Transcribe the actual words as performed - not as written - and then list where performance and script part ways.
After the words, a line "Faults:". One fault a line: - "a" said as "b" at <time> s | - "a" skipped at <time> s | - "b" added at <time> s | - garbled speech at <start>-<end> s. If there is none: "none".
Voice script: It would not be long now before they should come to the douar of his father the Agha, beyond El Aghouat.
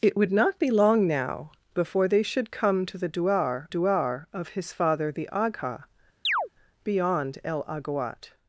It would not be long now before they should come to the douar douar of his father the Agha, beyond El Aghouat.
Faults:
- "douar" added at 3.7 s